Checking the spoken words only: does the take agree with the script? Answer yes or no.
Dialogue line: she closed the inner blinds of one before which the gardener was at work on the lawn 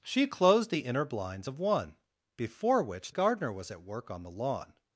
no